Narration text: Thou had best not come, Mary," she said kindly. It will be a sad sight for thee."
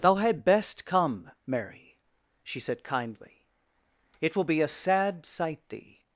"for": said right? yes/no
no